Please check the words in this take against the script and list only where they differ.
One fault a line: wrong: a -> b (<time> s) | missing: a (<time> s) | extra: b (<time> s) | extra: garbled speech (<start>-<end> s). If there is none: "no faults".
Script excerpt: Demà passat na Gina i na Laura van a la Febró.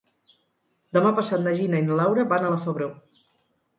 no faults